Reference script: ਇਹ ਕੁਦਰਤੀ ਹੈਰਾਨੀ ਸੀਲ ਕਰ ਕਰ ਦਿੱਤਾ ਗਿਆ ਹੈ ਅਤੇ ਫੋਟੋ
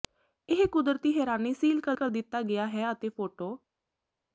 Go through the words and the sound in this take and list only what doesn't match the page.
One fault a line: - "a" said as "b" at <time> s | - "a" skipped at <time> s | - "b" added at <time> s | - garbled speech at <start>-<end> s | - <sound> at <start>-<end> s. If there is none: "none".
none